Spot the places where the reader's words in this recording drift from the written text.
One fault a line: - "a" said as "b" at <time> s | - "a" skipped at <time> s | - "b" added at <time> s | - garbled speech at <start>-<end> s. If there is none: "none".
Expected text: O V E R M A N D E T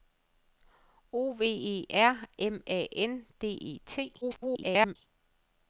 - garbled speech at 4.2-5.0 s